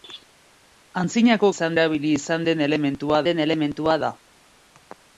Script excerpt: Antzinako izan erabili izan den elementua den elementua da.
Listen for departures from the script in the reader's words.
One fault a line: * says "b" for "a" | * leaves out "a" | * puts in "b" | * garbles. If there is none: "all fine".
all fine